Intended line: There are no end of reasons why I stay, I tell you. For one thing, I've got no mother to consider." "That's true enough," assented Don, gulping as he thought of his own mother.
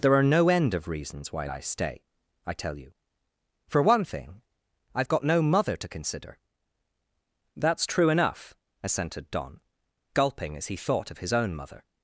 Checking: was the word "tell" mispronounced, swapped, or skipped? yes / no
no